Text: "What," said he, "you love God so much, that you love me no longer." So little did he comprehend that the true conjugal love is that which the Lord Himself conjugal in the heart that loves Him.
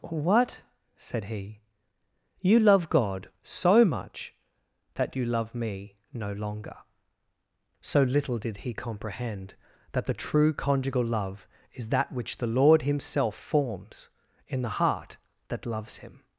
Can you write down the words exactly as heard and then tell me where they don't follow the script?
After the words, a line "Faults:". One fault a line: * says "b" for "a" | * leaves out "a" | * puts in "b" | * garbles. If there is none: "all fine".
"What," said he, "you love God so much, that you love me no longer." So little did he comprehend that the true conjugal love is that which the Lord Himself forms in the heart that loves Him.
Faults:
* says "forms" for "conjugal"